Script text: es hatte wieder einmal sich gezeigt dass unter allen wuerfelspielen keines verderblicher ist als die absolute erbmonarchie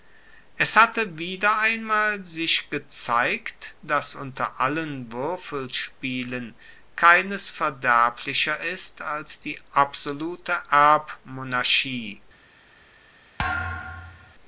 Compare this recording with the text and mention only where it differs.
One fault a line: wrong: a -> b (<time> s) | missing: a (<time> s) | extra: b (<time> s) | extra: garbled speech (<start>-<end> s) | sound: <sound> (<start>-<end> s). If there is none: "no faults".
sound: thud (13.4-14.3 s)